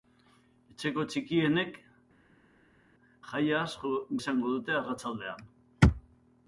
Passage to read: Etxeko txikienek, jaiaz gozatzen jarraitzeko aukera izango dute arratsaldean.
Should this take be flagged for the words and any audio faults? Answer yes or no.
yes